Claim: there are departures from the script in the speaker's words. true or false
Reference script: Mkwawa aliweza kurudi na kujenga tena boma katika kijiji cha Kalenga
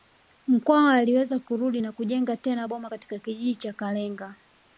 false